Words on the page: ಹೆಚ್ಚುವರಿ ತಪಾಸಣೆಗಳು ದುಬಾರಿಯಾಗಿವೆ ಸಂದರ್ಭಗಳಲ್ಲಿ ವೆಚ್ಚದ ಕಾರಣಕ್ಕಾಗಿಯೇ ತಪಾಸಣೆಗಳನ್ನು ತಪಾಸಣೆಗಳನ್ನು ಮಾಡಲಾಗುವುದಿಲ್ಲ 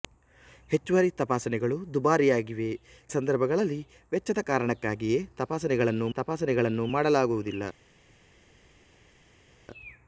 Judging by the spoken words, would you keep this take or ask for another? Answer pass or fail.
pass